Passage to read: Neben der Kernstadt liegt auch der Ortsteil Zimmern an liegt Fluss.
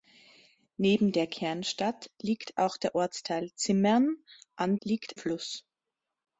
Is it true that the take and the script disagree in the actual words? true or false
false